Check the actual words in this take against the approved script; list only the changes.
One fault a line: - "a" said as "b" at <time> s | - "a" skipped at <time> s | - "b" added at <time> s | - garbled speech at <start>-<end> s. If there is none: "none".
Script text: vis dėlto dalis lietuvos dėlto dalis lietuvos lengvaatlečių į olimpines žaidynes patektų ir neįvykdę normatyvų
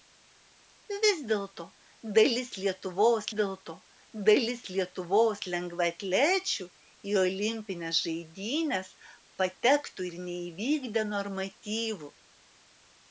none